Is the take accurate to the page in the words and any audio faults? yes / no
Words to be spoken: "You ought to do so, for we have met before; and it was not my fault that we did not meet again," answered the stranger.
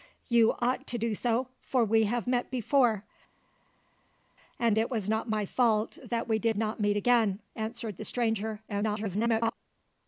no